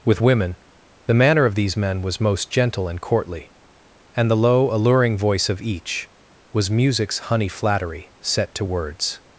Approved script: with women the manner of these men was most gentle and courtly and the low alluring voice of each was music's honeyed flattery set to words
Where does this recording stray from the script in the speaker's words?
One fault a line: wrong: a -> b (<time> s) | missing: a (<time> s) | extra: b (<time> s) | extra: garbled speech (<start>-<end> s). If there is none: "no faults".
wrong: honeyed -> honey (7.2 s)